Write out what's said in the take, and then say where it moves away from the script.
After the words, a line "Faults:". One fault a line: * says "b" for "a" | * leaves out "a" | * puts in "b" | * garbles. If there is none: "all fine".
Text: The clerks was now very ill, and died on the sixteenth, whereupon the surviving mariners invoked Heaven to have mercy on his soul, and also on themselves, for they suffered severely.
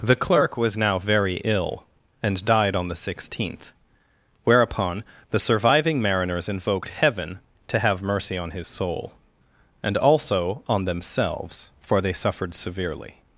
The clerk was now very ill, and died on the sixteenth, whereupon the surviving mariners invoked Heaven to have mercy on his soul, and also on themselves, for they suffered severely.
Faults:
* says "clerk" for "clerks"